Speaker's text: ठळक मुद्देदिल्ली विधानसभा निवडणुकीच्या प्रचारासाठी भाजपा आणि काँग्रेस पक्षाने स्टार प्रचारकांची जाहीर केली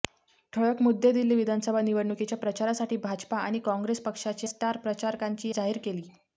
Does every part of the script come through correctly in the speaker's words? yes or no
yes